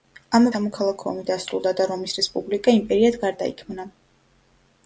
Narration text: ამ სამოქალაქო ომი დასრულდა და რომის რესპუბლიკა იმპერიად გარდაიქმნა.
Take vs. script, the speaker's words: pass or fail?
pass